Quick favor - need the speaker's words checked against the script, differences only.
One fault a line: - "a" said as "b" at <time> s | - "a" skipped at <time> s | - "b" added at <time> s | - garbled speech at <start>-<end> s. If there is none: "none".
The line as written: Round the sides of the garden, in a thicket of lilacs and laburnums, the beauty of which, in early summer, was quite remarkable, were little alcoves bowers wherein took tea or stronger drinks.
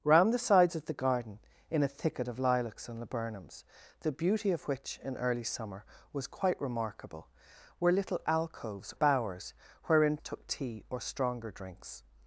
none